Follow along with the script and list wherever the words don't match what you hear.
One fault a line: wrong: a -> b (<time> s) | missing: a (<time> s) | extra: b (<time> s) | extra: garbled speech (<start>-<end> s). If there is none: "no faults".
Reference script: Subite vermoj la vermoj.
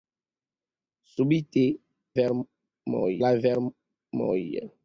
no faults